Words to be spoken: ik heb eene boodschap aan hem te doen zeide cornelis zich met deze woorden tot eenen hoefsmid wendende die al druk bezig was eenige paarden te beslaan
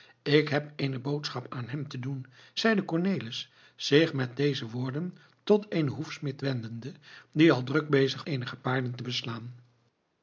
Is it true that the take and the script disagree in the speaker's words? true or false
true